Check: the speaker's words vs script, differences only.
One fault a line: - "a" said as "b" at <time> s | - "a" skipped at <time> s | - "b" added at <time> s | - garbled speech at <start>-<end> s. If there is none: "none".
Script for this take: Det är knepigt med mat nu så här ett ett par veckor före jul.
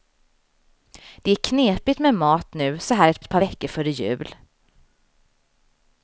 none